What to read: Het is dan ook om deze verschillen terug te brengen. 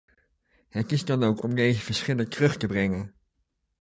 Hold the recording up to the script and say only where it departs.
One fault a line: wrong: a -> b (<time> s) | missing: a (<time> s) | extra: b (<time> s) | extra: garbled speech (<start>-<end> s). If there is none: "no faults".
no faults